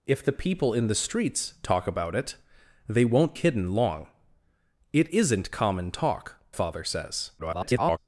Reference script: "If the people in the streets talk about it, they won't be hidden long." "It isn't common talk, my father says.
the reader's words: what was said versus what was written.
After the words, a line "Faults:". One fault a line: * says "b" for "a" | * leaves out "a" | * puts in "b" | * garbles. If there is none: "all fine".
"If the people in the streets talk about it, they won't hidden long." "It isn't common talk, father says. [garbled]
Faults:
* leaves out "be"
* leaves out "my"
* garbles